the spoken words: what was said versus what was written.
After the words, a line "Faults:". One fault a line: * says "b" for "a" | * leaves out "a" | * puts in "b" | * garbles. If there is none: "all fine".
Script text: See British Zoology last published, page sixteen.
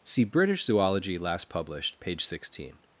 See British Zoology last published, page sixteen.
Faults:
all fine